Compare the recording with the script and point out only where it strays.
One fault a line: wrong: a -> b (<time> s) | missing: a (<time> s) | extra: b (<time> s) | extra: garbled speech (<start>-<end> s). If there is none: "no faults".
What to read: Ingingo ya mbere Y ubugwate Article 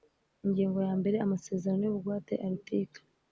extra: Amasezerano (1.3 s)